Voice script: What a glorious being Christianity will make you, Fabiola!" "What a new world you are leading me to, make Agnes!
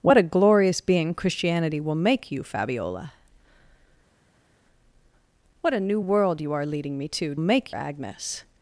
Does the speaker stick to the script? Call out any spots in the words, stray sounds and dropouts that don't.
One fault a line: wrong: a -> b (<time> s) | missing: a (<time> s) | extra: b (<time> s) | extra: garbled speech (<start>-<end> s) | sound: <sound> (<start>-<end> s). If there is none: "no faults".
no faults